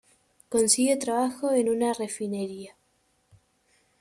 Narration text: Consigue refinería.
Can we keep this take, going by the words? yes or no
no